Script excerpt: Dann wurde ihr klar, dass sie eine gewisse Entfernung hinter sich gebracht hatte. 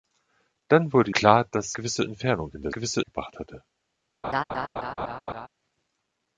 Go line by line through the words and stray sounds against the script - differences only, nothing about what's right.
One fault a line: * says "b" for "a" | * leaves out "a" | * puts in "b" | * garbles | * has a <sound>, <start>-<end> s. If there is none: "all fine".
* leaves out "ihr"
* leaves out "sie eine"
* says "gewisse" for "sich"
* has a laugh, 4.2-5.5 s